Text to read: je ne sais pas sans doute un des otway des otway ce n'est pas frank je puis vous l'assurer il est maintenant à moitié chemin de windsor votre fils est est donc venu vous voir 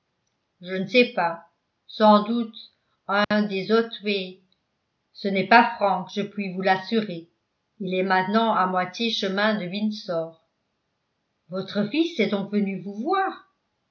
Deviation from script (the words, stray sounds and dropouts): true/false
true